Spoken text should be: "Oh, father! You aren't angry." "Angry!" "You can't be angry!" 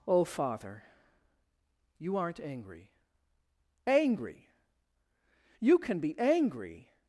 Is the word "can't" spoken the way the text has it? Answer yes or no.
no